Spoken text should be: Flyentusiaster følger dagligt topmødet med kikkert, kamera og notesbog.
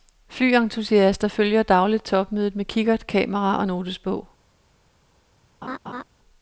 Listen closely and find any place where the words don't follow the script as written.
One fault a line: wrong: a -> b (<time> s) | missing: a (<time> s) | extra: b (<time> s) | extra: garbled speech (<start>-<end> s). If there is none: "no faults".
no faults